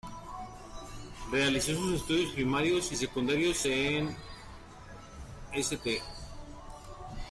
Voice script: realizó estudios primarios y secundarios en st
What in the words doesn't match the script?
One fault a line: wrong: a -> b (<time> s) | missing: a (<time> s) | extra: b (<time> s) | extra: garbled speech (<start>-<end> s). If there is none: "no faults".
extra: sus (1.8 s)